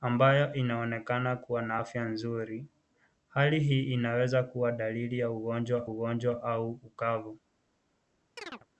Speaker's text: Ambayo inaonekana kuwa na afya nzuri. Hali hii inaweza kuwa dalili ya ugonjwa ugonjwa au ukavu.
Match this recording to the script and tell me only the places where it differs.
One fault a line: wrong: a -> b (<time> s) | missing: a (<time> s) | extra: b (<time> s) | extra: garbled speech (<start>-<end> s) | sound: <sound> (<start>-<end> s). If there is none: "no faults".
sound: chirp (8.4-8.7 s)